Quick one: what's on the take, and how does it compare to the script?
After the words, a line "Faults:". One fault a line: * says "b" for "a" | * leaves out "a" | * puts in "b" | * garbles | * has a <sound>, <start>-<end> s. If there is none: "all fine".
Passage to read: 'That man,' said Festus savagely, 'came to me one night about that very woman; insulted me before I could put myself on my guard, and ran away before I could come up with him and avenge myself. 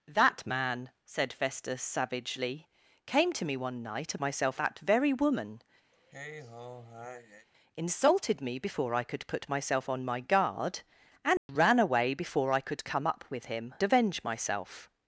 'That man,' said Festus savagely, 'came to me one night myself that very woman; insulted me before I could put myself on my guard, and ran away before I could come up with him avenge myself.
Faults:
* says "myself" for "about"
* has a sigh, 5.9-7.5 s
* has a dropout, 11.4-11.5 s
* leaves out "and"